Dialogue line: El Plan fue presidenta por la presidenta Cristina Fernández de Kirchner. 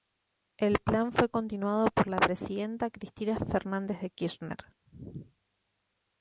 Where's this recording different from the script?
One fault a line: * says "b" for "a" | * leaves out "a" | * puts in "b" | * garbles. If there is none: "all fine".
* says "continuado" for "presidenta"